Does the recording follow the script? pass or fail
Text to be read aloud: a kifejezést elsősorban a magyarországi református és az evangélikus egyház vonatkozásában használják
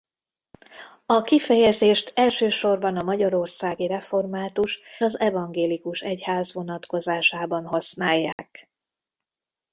fail